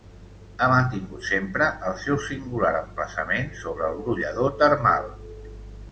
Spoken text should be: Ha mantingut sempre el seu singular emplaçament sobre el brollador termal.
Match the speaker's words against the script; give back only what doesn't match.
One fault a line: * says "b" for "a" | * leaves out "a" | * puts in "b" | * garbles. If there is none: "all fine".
all fine